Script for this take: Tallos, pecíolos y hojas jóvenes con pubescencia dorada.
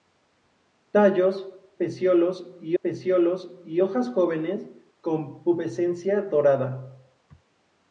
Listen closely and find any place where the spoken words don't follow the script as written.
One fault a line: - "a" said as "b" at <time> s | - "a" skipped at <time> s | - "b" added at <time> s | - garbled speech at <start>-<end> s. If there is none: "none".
- "pecíolos y" added at 2.8 s